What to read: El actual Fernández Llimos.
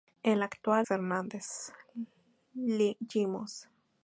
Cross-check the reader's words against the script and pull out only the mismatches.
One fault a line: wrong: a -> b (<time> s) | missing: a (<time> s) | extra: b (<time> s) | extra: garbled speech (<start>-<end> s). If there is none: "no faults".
no faults